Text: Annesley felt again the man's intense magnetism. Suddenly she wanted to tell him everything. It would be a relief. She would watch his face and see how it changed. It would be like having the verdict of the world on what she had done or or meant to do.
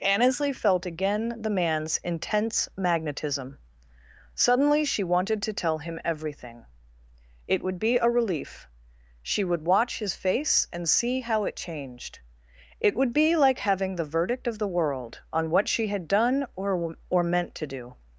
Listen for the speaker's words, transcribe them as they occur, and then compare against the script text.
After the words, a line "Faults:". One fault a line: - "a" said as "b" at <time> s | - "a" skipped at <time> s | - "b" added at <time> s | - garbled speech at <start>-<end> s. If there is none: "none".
Annesley felt again the man's intense magnetism. Suddenly she wanted to tell him everything. It would be a relief. She would watch his face and see how it changed. It would be like having the verdict of the world on what she had done or or meant to do.
Faults:
none